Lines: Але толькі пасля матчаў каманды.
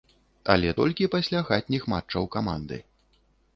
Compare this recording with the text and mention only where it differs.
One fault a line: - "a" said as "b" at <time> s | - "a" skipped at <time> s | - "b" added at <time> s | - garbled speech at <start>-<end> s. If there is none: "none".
- "хатніх" added at 1.5 s